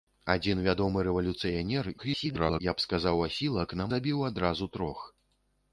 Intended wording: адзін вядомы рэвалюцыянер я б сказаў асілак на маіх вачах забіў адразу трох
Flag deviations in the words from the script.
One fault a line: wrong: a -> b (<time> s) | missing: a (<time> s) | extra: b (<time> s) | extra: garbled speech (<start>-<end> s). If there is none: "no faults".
extra: garbled speech (2.0-2.6 s)
missing: маіх вачах (3.9 s)